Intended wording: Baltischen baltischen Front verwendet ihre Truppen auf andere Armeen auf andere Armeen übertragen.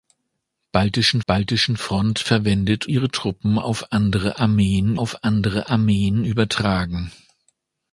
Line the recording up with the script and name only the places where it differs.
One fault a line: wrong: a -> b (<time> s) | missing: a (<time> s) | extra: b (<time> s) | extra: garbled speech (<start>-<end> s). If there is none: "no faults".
no faults